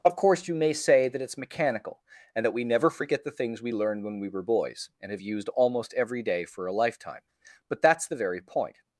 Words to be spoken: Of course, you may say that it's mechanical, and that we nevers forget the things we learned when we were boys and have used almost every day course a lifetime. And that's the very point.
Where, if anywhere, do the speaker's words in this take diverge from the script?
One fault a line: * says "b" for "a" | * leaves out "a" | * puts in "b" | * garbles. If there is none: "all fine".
* says "never" for "nevers"
* says "for" for "course"
* says "But" for "And"